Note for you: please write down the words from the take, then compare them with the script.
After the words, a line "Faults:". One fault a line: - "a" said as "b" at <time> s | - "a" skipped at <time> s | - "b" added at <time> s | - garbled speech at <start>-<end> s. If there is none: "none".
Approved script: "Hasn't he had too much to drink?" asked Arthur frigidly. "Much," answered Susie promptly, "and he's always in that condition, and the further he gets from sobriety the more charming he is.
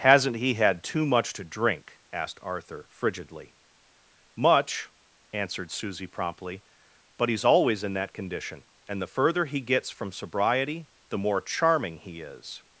"Hasn't he had too much to drink?" asked Arthur frigidly. "Much," answered Susie promptly, "but he's always in that condition, and the further he gets from sobriety the more charming he is.
Faults:
- "and" said as "but" at 7.2 s